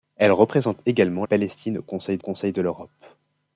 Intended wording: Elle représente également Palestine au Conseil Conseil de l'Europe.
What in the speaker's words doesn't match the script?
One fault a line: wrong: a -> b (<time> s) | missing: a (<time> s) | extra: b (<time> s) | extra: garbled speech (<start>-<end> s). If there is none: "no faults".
no faults